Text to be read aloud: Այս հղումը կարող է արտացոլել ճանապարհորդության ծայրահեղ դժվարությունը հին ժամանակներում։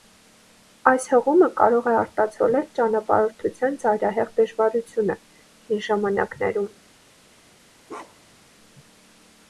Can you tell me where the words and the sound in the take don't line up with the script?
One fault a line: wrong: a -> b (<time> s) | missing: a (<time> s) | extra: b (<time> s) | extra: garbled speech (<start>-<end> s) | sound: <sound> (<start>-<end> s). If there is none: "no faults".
sound: bark (7.9-8.5 s)